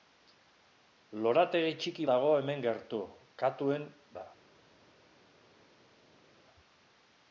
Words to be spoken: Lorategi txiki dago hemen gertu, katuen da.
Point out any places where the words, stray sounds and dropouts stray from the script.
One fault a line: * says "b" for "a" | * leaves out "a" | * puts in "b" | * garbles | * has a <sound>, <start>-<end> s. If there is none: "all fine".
all fine